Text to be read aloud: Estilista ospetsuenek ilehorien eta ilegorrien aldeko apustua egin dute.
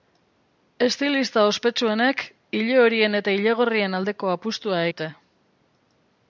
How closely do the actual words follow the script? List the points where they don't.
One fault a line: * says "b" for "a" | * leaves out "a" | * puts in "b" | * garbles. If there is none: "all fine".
* leaves out "egin"